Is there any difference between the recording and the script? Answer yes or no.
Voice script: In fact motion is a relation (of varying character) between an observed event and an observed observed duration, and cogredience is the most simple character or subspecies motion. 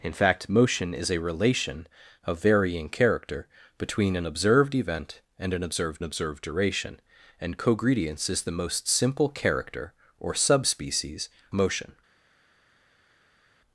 no